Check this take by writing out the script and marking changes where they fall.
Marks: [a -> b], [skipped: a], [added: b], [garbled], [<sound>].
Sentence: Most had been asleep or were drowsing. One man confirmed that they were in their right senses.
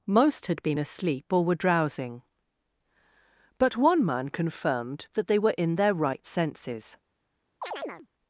Most had been asleep or were drowsing. [added: But] One man confirmed that they were in their right senses. [chirp]